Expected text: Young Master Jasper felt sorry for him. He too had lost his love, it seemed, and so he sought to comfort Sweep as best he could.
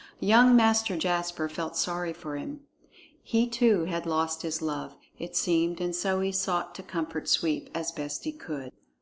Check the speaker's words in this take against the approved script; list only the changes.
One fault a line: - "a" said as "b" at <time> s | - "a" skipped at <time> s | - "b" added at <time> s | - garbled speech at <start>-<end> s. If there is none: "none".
none